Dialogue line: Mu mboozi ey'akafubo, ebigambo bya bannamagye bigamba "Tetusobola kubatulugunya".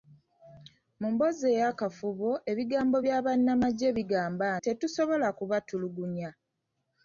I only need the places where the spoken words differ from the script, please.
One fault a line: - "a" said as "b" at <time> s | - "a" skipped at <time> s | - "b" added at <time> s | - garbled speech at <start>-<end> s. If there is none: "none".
none